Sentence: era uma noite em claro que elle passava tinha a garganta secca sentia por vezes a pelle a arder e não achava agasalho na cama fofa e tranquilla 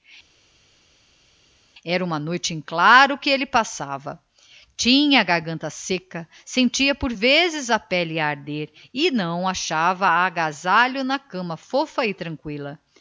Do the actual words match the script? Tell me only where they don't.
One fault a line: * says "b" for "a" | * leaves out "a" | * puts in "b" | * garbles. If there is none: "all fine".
all fine